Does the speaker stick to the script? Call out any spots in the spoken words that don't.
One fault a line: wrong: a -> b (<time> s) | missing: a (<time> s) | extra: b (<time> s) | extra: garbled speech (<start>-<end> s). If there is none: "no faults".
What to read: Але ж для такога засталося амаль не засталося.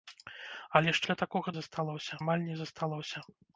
no faults